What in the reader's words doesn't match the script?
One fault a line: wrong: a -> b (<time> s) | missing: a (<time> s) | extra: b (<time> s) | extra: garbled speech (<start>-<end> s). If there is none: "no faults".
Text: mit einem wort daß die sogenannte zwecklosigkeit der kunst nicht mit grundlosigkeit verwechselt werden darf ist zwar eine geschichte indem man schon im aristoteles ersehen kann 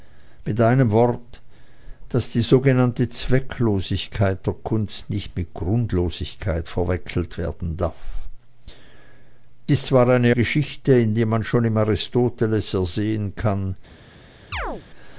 no faults